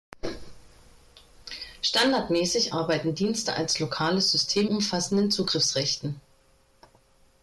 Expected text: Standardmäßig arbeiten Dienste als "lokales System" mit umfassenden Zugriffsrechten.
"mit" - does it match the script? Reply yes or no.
no